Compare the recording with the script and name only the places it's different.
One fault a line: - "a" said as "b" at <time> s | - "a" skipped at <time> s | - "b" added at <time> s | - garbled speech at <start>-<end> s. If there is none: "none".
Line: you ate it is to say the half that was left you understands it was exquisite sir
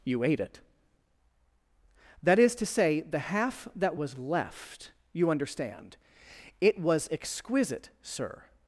- "that" added at 2.2 s
- "understands" said as "understand" at 5.3 s